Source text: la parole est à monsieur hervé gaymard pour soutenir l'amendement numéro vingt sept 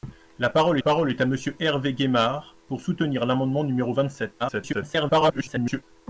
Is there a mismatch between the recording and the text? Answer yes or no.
yes